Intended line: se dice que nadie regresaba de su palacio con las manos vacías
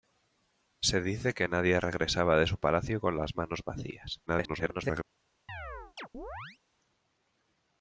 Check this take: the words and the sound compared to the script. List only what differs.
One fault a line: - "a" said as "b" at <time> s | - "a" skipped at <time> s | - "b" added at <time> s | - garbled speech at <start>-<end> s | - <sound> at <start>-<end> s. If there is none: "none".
- garbled speech at 4.3-5.0 s
- chirp at 5.5-6.6 s